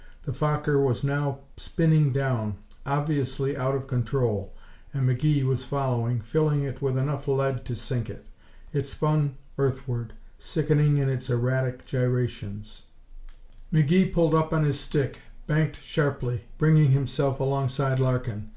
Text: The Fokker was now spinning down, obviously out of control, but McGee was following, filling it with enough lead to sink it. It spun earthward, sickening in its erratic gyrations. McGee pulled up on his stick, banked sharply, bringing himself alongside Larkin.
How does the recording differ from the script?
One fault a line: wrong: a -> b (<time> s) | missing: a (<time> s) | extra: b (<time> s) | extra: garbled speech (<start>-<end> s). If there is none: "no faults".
wrong: but -> and (5.0 s)